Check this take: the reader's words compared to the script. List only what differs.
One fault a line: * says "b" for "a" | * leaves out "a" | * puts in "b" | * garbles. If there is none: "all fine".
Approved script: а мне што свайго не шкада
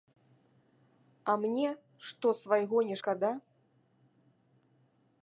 all fine